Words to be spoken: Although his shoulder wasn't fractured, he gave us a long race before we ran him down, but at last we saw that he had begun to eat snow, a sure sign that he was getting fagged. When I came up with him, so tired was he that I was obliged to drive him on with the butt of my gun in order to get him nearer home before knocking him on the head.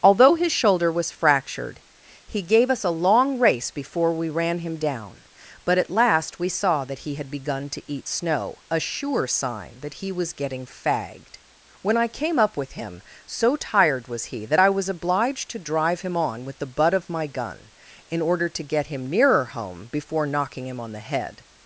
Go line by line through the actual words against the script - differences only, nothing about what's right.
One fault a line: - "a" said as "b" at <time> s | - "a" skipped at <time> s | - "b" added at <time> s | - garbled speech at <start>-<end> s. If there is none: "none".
- "wasn't" said as "was" at 0.9 s